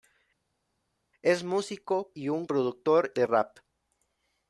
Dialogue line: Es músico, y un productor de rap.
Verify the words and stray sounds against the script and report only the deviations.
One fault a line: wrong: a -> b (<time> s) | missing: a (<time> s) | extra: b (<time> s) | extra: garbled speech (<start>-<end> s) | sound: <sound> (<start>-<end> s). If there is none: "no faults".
no faults